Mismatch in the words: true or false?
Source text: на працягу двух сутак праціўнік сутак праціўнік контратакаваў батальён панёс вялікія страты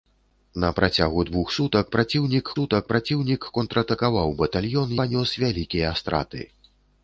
false